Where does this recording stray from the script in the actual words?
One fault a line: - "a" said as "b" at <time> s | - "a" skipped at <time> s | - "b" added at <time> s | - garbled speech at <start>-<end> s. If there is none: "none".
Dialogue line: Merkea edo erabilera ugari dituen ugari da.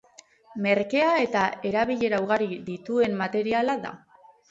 - "edo" said as "eta" at 1.2 s
- "ugari" said as "materiala" at 3.2 s